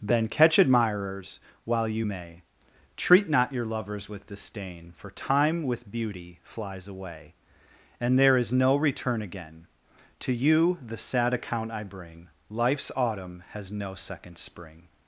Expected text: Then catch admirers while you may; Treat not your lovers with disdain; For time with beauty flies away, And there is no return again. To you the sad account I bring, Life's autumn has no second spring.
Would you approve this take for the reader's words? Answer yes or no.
yes